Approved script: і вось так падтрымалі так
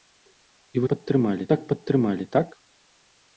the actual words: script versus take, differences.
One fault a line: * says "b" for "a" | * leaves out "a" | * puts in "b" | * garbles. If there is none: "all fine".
* says "падтрымалі" for "вось"